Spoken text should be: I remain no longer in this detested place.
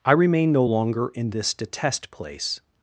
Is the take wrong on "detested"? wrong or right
wrong